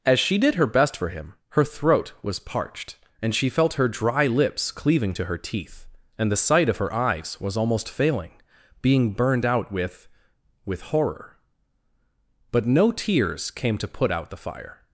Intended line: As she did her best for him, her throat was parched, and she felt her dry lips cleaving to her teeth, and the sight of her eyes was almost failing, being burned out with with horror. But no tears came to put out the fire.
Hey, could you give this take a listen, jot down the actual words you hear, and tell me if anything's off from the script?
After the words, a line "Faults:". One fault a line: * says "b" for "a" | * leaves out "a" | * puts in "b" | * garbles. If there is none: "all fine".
As she did her best for him, her throat was parched, and she felt her dry lips cleaving to her teeth, and the sight of her eyes was almost failing, being burned out with with horror. But no tears came to put out the fire.
Faults:
all fine